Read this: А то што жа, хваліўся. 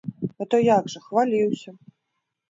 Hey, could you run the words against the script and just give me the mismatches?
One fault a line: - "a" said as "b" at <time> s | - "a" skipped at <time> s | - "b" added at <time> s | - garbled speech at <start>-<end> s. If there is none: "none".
- "што" said as "як" at 0.7 s